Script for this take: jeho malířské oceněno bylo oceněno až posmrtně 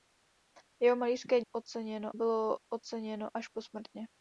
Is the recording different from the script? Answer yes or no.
no